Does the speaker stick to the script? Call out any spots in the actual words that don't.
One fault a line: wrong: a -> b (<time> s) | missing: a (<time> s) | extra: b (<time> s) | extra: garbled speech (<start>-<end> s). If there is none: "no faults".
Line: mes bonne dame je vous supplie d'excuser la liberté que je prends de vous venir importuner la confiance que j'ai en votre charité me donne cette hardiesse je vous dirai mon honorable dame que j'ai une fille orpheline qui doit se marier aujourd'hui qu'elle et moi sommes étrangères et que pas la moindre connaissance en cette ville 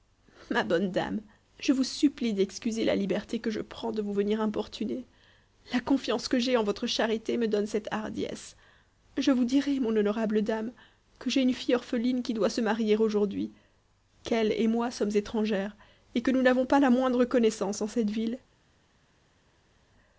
wrong: mes -> ma (0.5 s)
extra: nous n'avons (16.3 s)